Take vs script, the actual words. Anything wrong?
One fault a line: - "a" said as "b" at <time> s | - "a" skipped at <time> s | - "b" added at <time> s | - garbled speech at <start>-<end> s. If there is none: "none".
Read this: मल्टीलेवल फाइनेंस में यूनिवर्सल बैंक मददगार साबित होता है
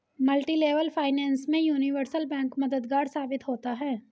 none